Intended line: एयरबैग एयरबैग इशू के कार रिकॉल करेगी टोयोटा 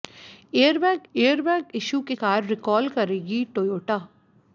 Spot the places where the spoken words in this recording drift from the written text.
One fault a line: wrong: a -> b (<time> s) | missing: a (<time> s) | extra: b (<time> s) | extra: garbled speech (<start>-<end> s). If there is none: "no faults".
no faults